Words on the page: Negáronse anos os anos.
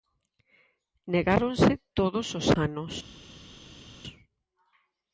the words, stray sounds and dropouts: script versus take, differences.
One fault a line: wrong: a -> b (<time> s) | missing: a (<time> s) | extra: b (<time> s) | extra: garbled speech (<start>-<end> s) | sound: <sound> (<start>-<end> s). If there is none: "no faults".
wrong: anos -> todos (2.0 s)